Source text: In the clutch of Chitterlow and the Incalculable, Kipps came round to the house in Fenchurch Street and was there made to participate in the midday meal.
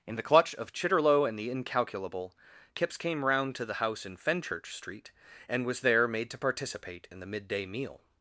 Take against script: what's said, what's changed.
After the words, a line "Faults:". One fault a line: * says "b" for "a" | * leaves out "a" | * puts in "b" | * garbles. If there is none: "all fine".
In the clutch of Chitterlow and the Incalculable, Kipps came round to the house in Fenchurch Street and was there made to participate in the midday meal.
Faults:
all fine